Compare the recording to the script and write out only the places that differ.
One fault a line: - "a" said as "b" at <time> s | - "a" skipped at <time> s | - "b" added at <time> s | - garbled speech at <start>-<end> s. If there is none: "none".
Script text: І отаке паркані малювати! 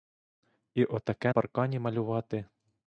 none